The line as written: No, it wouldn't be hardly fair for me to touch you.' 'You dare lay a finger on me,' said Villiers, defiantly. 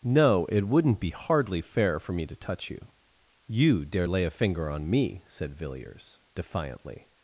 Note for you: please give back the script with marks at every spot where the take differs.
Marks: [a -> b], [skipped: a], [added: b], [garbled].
No, it wouldn't be hardly fair for me to touch you.' 'You dare lay a finger on me,' said Villiers, defiantly.